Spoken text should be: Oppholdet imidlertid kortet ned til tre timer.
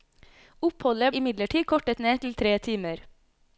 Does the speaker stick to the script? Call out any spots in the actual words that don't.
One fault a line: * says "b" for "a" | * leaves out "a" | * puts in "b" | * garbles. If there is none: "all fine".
all fine